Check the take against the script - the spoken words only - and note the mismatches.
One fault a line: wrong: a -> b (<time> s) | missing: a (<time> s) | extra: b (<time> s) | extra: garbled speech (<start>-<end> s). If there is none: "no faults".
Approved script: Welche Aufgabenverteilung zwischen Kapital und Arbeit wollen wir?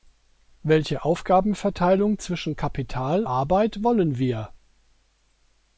missing: und (3.2 s)